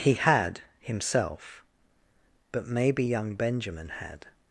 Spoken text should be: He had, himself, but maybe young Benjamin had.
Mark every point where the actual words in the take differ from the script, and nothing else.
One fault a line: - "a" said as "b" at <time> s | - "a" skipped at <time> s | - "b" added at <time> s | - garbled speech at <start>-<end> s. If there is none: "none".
none